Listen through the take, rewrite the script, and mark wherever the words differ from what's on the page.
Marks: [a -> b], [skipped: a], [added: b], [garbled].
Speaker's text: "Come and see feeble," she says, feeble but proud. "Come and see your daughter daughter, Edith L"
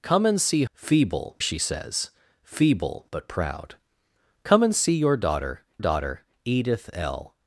"Come and see feeble," she says, feeble but proud. "Come and see your daughter daughter, Edith L"